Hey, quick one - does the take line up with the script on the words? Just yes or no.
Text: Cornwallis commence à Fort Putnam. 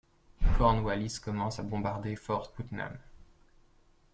no